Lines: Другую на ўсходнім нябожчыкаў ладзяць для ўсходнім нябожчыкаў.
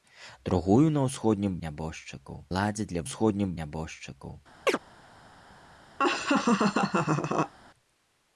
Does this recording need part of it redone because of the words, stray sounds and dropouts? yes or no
yes